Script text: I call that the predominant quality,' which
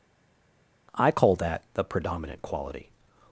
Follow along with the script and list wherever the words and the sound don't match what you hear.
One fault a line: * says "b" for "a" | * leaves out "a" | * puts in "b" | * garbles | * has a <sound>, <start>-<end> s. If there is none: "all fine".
* leaves out "which"